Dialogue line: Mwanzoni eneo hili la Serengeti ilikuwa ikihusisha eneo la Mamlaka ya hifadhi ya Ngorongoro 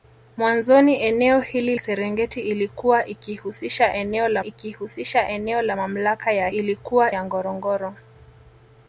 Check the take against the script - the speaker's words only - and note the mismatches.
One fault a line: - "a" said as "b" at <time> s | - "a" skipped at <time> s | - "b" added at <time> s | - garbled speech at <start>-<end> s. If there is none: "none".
- "la" skipped at 1.8 s
- "ikihusisha eneo la" added at 4.4 s
- "hifadhi" said as "ilikuwa" at 6.5 s